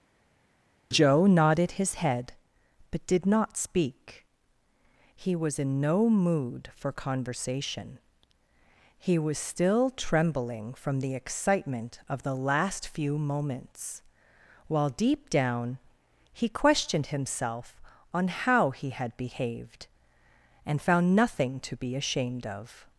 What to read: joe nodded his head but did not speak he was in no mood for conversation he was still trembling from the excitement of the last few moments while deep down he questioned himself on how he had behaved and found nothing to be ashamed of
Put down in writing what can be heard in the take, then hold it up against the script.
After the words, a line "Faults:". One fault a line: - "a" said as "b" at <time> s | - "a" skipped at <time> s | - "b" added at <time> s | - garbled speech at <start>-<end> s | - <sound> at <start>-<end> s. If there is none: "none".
joe nodded his head but did not speak he was in no mood for conversation he was still trembling from the excitement of the last few moments while deep down he questioned himself on how he had behaved and found nothing to be ashamed of
Faults:
none